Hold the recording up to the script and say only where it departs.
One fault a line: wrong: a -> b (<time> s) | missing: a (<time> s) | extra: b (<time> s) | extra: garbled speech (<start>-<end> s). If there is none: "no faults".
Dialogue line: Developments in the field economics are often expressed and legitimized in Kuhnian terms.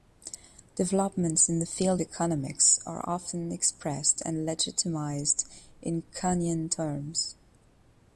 no faults